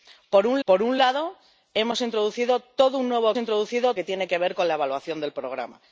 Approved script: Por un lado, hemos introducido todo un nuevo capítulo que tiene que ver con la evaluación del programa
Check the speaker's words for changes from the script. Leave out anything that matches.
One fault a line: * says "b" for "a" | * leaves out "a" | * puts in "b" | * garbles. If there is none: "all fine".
* puts in "por un"
* says "introducido" for "capítulo"